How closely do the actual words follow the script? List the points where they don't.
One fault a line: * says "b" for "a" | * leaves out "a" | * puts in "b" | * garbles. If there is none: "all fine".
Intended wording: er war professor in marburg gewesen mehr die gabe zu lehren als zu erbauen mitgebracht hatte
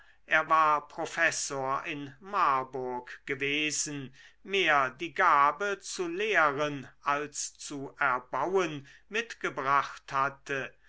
all fine